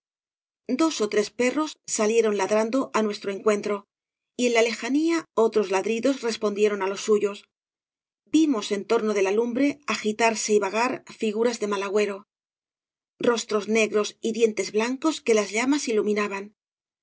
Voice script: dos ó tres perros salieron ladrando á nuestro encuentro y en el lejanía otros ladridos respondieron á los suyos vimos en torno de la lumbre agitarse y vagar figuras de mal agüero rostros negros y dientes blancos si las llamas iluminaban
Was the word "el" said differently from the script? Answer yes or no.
yes